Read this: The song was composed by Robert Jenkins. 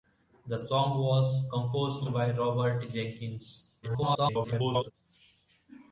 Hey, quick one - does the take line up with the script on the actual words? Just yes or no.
no